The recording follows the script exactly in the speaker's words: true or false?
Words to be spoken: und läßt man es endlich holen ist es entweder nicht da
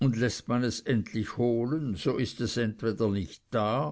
false